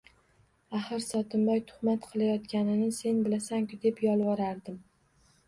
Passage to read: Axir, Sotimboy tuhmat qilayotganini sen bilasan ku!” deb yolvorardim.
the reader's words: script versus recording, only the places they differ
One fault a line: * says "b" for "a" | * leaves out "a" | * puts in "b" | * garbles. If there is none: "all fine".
all fine